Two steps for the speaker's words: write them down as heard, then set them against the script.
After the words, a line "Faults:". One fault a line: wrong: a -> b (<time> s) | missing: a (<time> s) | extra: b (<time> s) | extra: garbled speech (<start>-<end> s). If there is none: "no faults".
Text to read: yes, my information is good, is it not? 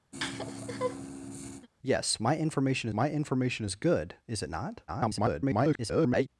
yes, my information my information is good, is it not? [garbled]
Faults:
extra: my information (2.9 s)
extra: garbled speech (4.9-6.3 s)